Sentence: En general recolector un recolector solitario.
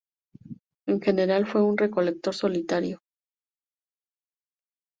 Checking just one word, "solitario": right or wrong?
right